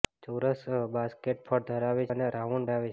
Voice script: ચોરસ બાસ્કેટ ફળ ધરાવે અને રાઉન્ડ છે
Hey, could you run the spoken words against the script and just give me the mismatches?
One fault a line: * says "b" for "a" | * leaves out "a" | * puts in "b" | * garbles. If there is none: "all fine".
all fine